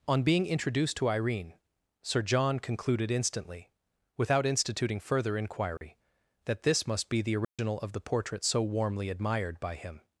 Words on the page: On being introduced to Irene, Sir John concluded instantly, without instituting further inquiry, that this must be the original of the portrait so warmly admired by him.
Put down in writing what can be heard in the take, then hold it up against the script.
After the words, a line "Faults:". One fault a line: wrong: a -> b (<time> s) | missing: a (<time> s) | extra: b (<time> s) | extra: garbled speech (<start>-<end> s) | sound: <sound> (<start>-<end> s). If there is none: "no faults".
On being introduced to Irene, Sir John concluded instantly, without instituting further inquiry, that this must be the original of the portrait so warmly admired by him.
Faults:
sound: dropout (5.8-5.8 s)
sound: dropout (7.4-7.6 s)